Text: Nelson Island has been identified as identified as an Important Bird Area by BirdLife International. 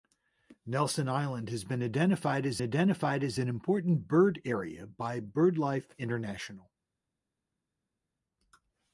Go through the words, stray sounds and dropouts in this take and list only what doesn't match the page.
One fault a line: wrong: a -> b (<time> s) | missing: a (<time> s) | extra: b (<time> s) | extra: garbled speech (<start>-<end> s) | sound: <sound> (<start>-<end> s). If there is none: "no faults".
no faults